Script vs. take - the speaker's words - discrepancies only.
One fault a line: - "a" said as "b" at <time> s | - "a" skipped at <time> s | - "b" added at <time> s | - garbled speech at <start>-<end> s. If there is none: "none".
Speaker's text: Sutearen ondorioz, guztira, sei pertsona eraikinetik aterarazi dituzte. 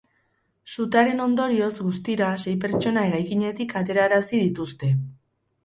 none